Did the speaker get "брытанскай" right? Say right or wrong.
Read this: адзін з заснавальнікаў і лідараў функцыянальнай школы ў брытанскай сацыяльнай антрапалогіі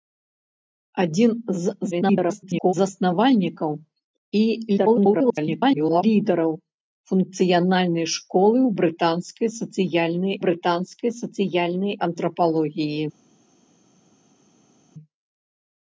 right